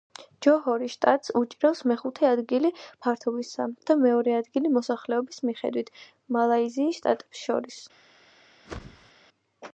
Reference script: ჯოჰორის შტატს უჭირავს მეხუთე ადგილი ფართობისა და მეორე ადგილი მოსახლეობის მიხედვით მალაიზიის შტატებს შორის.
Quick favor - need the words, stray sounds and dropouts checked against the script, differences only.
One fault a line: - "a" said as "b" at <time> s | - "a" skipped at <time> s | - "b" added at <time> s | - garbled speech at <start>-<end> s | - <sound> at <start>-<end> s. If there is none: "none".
- whoosh at 8.7-9.1 s